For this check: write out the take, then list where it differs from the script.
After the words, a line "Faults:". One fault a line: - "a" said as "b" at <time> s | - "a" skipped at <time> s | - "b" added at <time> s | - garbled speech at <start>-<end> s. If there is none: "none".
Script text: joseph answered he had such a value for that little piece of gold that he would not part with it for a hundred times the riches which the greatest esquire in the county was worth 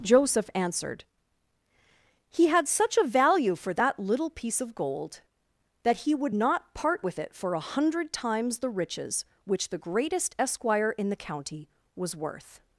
joseph answered he had such a value for that little piece of gold that he would not part with it for a hundred times the riches which the greatest esquire in the county was worth
Faults:
none